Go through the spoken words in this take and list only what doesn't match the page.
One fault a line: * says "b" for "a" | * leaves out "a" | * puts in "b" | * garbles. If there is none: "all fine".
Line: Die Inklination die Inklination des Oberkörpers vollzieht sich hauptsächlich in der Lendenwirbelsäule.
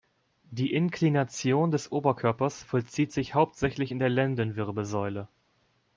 * leaves out "die Inklination"